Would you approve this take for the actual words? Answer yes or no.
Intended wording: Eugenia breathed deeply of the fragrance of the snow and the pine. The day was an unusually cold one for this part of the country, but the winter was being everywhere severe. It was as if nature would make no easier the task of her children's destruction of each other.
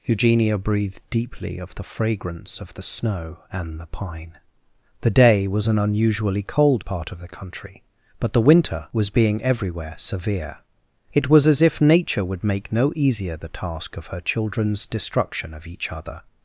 no